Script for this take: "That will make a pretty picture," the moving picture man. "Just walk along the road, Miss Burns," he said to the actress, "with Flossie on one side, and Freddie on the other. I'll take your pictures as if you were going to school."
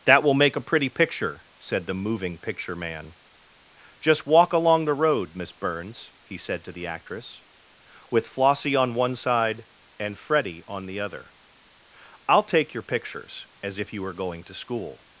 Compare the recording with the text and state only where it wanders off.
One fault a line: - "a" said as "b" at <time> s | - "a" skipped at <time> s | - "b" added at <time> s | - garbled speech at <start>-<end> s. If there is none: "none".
- "said" added at 1.6 s